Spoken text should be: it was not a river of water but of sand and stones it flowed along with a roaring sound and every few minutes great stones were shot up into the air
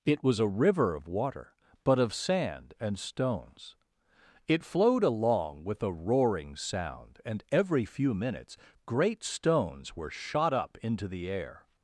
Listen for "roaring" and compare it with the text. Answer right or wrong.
right